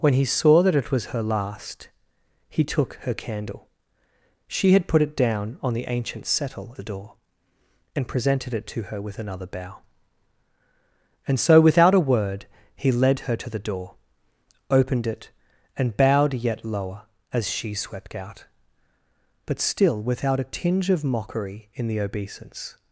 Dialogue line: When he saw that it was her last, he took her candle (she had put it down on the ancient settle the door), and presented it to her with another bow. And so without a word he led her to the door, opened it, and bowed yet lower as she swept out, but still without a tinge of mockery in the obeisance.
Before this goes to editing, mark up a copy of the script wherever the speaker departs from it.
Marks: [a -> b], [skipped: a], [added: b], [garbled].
When he saw that it was her last, he took her candle (she had put it down on the ancient settle the door), and presented it to her with another bow. And so without a word he led her to the door, opened it, and bowed yet lower as she swept out, but still without a tinge of mockery in the obeisance.